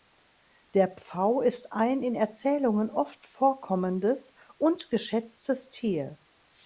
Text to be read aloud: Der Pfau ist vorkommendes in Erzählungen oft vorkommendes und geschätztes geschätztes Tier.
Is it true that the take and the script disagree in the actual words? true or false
true